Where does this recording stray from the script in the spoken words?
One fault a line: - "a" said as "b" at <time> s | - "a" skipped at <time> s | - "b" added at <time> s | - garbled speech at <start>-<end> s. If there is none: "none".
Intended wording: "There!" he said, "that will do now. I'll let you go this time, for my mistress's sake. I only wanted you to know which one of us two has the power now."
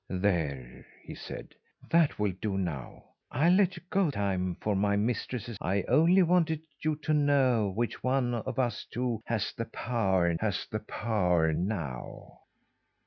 - "this" skipped at 4.1 s
- "sake" skipped at 5.6 s
- "has the power" added at 10.4 s